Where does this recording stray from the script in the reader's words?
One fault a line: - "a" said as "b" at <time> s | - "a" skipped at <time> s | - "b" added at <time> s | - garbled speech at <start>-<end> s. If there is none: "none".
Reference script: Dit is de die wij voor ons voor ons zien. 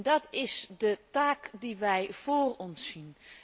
- "Dit" said as "Dat" at 0.0 s
- "taak" added at 1.1 s
- "voor ons" skipped at 2.9 s